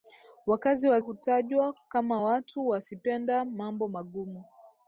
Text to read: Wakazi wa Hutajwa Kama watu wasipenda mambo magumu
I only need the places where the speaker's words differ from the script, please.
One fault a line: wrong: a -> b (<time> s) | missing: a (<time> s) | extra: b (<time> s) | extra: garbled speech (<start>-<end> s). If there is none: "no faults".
no faults